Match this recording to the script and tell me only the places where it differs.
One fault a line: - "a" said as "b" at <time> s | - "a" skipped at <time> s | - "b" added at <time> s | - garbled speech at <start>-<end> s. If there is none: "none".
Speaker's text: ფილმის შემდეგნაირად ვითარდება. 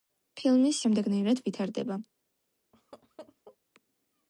none